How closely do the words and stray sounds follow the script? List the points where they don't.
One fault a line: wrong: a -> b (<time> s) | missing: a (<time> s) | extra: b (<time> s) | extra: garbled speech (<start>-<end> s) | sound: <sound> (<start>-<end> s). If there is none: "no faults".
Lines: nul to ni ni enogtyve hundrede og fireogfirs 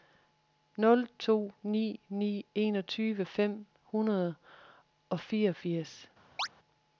extra: fem (3.2 s)
sound: chirp (6.4-6.5 s)